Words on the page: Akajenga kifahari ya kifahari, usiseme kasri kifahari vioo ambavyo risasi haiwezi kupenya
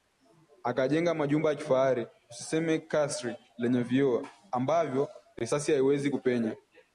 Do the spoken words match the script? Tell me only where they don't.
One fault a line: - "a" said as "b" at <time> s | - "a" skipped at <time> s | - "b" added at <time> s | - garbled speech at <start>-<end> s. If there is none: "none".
- "kifahari" said as "majumba" at 1.1 s
- "kifahari" said as "lenye" at 3.6 s